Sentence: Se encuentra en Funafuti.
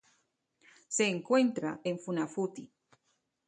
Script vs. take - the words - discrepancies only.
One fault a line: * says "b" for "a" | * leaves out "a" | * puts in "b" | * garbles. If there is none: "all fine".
all fine